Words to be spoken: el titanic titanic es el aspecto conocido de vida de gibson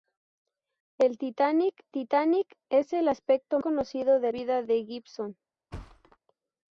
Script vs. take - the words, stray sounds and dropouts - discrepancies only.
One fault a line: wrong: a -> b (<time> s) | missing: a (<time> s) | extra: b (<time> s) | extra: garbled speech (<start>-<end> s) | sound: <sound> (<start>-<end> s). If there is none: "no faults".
sound: thud (5.7-6.2 s)